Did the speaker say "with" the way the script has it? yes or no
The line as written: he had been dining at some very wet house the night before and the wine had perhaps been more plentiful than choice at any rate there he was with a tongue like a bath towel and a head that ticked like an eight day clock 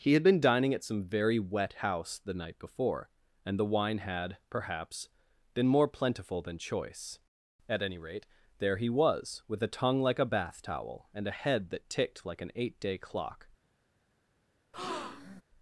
yes